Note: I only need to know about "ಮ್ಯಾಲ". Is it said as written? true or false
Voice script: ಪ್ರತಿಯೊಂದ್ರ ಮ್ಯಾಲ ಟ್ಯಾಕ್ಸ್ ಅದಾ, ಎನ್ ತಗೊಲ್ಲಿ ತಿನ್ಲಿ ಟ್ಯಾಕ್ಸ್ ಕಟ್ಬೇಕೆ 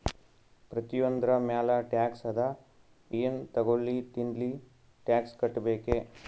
true